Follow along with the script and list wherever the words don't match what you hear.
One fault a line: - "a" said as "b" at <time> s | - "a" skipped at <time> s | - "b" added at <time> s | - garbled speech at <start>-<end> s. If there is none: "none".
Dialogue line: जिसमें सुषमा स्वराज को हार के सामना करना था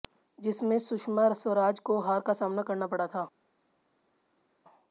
- "के" said as "का" at 2.2 s
- "पड़ा" added at 2.9 s